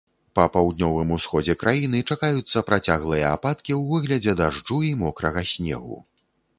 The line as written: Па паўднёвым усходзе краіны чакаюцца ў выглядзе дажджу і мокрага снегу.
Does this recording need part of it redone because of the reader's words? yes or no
yes